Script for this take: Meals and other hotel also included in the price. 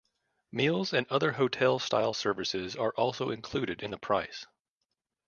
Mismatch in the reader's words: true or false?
true